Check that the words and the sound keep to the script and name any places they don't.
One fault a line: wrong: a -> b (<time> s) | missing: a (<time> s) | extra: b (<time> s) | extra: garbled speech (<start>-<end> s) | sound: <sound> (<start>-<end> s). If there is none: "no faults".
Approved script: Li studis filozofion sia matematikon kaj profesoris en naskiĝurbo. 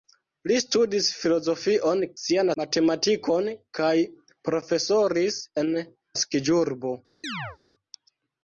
sound: chirp (7.2-7.6 s)